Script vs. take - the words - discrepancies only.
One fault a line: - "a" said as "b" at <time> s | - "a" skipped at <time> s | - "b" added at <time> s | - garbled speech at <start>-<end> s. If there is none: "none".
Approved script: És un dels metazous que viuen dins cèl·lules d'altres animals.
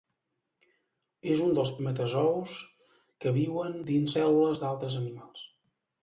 none